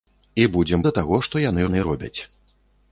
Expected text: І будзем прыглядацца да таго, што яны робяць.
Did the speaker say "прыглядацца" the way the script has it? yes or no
no